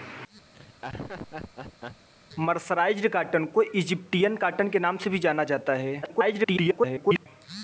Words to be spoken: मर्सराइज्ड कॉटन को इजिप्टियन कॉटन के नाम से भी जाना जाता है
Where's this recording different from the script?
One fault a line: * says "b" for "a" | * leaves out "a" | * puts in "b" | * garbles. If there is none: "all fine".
* garbles